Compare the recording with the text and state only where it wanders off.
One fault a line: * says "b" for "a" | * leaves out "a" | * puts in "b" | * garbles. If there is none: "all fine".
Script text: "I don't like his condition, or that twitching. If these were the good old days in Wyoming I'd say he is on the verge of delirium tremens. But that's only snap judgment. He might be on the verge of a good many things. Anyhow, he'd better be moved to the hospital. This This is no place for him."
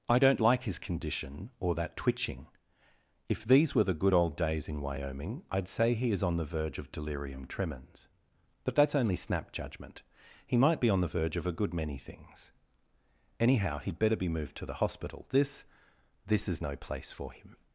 all fine